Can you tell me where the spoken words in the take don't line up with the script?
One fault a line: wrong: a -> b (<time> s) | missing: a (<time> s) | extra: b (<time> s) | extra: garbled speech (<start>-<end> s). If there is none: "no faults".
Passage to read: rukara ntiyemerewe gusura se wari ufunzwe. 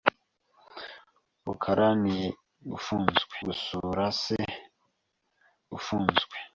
wrong: ntiyemerewe -> ufunzwe (2.8 s)
missing: wari (4.4 s)